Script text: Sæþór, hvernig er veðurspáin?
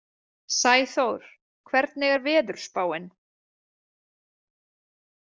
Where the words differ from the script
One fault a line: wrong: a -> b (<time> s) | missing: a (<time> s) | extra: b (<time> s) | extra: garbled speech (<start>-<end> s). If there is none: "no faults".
no faults